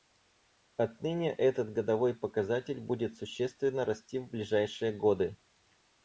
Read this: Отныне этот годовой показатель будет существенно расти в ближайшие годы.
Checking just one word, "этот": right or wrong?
right